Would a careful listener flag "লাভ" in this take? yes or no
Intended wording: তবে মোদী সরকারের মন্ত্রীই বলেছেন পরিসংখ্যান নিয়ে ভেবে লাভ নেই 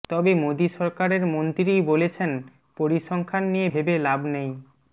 no